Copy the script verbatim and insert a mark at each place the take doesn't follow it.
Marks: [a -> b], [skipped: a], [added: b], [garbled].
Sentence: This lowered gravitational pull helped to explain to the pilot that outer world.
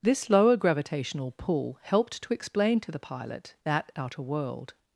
This [lowered -> lower] gravitational pull helped to explain to the pilot that outer world.